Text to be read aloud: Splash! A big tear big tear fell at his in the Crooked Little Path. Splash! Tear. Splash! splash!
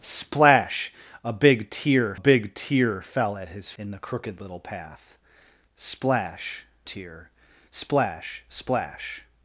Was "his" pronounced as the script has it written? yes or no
yes